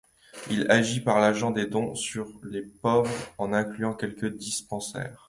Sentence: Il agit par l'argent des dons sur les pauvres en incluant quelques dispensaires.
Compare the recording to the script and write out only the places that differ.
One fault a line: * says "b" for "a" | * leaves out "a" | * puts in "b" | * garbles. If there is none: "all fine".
all fine